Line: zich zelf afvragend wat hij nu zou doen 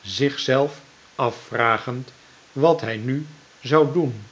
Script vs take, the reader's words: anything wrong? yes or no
no